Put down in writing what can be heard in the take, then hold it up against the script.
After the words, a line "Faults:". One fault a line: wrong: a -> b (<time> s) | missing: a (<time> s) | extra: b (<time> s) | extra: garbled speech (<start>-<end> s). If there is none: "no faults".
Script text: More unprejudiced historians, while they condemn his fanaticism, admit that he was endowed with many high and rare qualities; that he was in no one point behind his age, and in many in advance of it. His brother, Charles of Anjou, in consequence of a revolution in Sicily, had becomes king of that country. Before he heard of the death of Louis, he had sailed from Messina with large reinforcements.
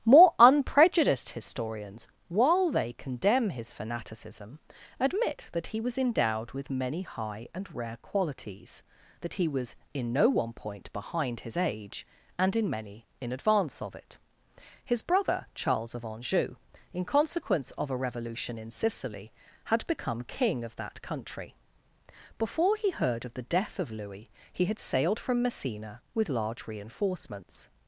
More unprejudiced historians, while they condemn his fanaticism, admit that he was endowed with many high and rare qualities; that he was in no one point behind his age, and in many in advance of it. His brother, Charles of Anjou, in consequence of a revolution in Sicily, had become king of that country. Before he heard of the death of Louis, he had sailed from Messina with large reinforcements.
Faults:
wrong: becomes -> become (19.9 s)